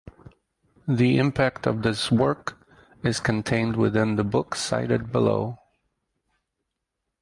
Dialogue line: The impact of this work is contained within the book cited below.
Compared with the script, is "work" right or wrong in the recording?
right